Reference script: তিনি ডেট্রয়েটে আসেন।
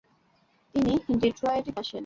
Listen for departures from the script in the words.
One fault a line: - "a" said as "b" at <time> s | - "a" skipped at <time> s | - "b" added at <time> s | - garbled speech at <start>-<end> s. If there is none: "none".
none